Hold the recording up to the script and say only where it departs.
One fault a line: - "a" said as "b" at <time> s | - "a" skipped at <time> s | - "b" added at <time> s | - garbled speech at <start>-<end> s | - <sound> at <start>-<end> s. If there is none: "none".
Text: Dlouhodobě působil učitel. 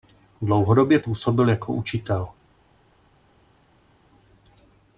- "jako" added at 1.5 s